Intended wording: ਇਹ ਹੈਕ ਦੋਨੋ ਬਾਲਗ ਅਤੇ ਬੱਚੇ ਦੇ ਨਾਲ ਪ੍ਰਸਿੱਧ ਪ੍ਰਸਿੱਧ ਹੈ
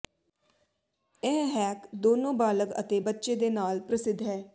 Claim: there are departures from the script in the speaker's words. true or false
true